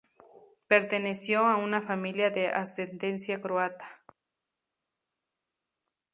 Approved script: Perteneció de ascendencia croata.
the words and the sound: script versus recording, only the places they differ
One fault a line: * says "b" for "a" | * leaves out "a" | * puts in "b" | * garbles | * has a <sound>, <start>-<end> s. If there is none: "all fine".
* puts in "a una familia"